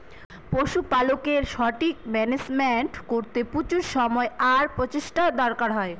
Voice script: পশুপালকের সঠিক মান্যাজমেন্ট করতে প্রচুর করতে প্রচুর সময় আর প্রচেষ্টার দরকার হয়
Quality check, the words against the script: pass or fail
fail